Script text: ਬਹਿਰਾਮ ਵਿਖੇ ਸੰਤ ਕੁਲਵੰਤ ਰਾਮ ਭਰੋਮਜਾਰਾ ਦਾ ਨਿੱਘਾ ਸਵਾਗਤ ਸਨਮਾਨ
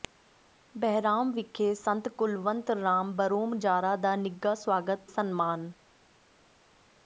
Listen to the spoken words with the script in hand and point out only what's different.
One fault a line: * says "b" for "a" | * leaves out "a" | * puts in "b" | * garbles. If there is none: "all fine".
all fine